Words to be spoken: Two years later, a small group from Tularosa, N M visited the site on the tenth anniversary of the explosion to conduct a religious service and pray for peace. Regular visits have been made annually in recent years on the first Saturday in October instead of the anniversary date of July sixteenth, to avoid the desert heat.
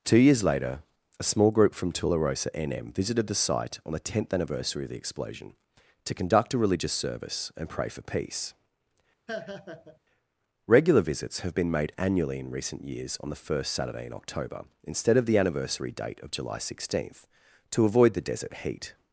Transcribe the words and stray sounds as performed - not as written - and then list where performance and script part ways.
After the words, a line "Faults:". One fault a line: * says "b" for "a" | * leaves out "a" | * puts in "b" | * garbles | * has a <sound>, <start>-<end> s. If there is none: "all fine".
Two years later, a small group from Tularosa, N M visited the site on the tenth anniversary of the explosion to conduct a religious service and pray for peace. Regular visits have been made annually in recent years on the first Saturday in October instead of the anniversary date of July sixteenth, to avoid the desert heat.
Faults:
* has a laugh, 9.3-10.0 s